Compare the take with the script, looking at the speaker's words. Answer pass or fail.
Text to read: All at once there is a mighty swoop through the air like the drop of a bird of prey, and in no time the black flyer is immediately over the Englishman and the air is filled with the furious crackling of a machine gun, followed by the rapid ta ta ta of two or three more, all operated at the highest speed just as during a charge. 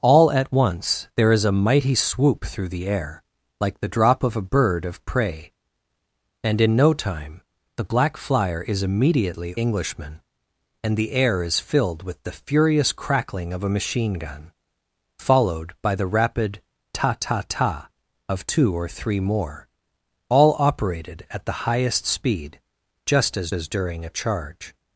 fail